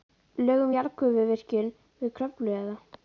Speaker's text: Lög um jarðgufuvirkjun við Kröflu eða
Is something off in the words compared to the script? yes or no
no